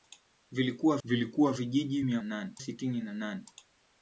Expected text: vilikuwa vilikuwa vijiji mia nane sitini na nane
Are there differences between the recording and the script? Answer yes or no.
no